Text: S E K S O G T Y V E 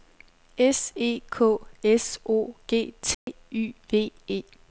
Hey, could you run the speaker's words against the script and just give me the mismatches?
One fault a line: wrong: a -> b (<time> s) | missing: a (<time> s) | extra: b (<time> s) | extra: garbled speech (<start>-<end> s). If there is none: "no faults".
no faults